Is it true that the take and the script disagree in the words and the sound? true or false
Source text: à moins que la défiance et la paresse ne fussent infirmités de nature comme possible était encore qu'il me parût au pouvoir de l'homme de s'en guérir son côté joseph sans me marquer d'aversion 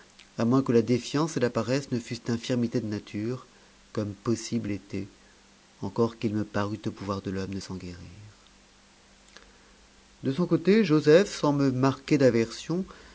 true